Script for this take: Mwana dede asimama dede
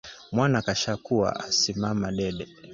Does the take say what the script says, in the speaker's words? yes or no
no